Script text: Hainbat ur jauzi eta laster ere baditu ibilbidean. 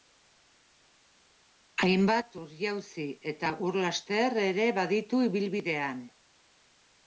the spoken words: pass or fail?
fail